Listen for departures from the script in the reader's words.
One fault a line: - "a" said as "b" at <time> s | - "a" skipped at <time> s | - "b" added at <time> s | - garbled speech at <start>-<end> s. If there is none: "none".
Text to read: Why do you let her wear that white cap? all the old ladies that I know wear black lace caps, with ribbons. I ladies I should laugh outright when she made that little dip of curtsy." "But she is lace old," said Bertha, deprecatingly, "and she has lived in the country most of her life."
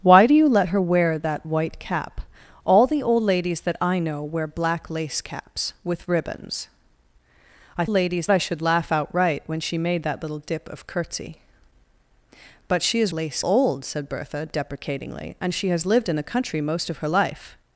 none